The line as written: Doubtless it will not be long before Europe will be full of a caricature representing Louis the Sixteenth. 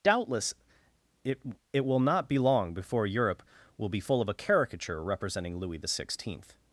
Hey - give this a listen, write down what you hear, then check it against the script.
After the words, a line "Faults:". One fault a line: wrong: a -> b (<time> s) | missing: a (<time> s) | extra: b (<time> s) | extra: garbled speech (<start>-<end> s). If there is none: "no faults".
Doubtless it it will not be long before Europe will be full of a caricature representing Louis the Sixteenth.
Faults:
extra: it (1.7 s)